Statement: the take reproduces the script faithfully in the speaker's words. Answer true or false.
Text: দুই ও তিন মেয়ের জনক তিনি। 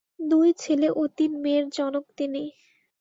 false